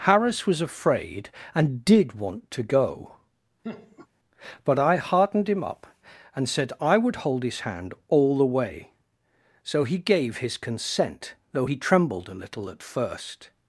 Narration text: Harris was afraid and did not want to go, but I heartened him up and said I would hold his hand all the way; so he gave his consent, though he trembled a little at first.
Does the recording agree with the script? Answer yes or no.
no